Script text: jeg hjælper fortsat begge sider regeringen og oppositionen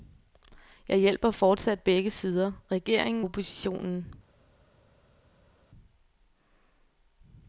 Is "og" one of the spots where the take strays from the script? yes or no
yes